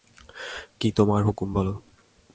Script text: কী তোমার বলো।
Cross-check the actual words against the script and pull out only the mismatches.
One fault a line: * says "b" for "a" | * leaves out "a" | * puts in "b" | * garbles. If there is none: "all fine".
* puts in "হুকুম"